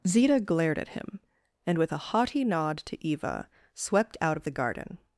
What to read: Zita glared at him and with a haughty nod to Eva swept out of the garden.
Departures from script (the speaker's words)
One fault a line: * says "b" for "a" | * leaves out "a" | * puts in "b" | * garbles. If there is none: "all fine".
all fine